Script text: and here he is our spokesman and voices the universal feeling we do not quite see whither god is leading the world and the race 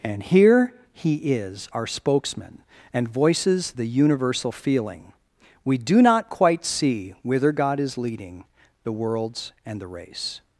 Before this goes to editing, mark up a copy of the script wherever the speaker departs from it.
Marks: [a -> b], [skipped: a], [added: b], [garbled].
and here he is our spokesman and voices the universal feeling we do not quite see whither god is leading the [world -> worlds] and the race